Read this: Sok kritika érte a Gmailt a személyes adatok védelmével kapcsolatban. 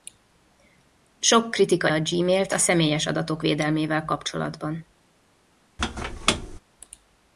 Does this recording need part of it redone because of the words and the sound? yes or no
yes